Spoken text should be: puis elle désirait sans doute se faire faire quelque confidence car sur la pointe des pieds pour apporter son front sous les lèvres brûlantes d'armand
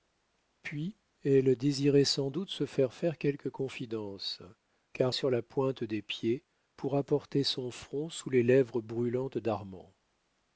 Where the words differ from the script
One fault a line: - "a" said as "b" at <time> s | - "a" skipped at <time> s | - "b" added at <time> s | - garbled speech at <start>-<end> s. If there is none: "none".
none